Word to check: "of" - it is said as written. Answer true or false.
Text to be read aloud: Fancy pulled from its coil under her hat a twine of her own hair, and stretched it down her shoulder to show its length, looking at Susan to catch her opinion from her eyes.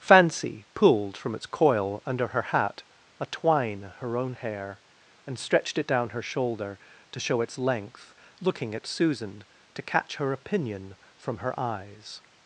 false